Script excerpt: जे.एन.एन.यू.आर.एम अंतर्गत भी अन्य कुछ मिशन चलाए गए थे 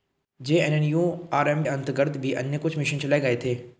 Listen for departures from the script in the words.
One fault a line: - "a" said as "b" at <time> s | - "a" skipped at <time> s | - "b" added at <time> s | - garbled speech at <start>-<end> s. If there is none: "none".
none